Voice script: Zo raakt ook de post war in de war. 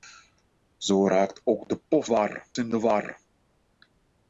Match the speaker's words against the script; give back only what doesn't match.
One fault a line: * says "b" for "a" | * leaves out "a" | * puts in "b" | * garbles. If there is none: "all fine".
all fine